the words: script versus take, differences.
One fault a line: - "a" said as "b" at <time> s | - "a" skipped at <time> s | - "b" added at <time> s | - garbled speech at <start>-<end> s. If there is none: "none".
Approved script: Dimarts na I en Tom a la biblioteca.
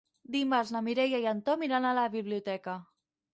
- "Mireia" added at 0.9 s
- "iran" added at 1.7 s